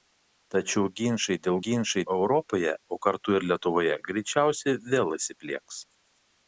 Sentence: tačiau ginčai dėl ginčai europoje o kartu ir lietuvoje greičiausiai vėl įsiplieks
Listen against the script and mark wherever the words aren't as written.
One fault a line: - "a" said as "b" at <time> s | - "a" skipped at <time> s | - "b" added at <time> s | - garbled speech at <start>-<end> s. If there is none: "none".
none